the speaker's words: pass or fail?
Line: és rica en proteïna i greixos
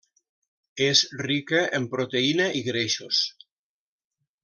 pass